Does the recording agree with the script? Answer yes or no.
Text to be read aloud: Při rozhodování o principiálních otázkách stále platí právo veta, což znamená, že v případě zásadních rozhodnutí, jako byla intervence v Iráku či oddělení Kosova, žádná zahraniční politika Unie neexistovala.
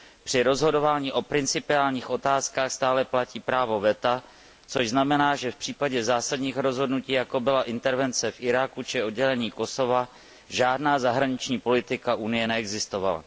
yes